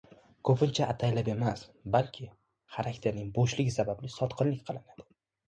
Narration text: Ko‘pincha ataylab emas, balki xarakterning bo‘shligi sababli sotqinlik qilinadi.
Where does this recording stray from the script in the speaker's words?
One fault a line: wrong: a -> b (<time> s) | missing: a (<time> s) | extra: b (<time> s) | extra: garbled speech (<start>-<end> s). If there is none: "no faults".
no faults